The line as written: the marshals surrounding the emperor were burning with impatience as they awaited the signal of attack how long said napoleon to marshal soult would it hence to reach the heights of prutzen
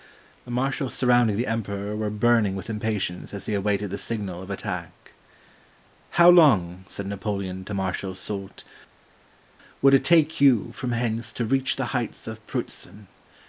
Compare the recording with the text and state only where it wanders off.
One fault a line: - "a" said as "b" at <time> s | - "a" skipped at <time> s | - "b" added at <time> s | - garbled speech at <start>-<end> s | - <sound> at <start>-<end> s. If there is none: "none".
- "take you from" added at 10.0 s